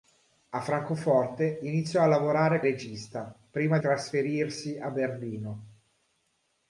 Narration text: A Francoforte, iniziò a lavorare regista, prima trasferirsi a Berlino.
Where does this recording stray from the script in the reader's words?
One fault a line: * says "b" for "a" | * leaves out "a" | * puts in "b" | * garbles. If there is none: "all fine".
all fine